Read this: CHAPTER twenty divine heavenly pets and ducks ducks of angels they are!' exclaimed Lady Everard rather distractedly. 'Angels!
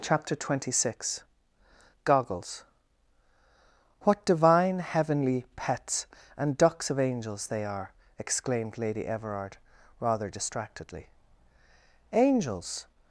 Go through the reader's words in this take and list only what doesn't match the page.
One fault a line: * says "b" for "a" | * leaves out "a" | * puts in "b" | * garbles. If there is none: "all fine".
* puts in "six Goggles What"
* leaves out "ducks"